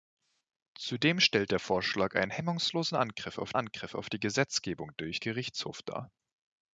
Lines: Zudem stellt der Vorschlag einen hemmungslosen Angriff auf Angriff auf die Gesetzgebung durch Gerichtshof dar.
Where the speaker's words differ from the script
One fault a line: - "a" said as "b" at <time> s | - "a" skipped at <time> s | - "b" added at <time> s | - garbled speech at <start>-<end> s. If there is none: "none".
none